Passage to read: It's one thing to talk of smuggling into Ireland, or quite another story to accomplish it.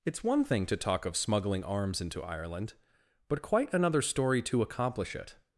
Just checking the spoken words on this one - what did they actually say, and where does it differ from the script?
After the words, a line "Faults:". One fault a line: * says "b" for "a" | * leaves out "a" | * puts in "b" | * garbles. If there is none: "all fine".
It's one thing to talk of smuggling arms into Ireland, but quite another story to accomplish it.
Faults:
* puts in "arms"
* says "but" for "or"